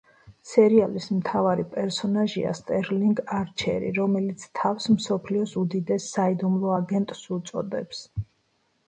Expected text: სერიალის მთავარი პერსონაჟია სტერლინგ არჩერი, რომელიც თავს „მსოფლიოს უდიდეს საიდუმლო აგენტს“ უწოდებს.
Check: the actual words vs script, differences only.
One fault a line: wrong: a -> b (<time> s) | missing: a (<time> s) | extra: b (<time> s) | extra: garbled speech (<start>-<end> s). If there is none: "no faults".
no faults